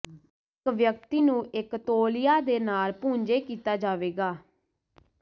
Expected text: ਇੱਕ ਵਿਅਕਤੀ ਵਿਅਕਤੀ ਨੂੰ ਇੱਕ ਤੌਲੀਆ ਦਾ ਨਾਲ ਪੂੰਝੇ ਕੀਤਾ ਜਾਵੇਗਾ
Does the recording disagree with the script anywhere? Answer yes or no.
yes